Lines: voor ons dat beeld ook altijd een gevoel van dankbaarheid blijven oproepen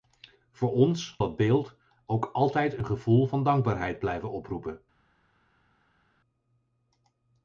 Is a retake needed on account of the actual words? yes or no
no